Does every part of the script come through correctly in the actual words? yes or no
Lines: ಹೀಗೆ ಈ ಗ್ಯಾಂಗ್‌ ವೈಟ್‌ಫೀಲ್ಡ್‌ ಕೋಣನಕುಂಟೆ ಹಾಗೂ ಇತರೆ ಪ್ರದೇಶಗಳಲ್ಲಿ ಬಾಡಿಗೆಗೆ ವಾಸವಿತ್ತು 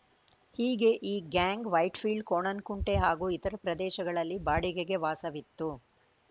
yes